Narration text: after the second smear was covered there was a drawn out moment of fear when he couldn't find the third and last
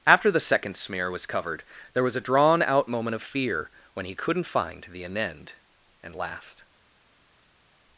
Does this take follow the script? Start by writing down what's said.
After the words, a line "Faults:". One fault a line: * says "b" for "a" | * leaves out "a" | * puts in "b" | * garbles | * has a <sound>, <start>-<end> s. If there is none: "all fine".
after the second smear was covered there was a drawn out moment of fear when he couldn't find the anend and last
Faults:
* says "anend" for "third"